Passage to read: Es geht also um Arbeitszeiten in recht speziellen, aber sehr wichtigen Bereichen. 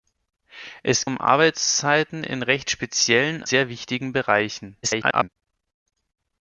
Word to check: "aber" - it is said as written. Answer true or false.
false